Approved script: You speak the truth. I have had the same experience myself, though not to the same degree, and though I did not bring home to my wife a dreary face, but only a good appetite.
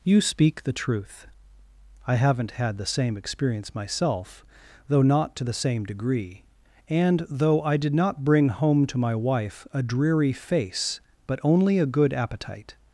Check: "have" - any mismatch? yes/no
yes